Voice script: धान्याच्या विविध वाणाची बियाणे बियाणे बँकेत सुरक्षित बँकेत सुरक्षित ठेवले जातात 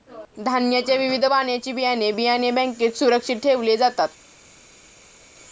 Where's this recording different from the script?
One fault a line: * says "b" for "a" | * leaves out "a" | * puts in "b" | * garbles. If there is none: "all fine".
* leaves out "बँकेत सुरक्षित"